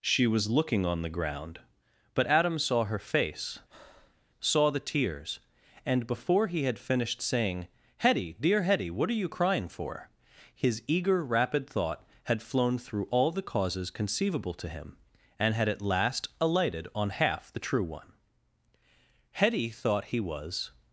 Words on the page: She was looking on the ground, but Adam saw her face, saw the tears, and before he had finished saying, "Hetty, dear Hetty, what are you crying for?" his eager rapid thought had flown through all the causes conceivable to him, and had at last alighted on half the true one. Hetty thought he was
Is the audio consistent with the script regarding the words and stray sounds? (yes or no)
no